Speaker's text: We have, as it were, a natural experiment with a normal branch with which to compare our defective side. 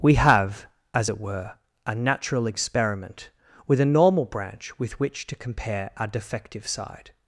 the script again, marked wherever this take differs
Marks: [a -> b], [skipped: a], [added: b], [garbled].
We have, as it were, a natural experiment with a normal branch with which to compare our defective side.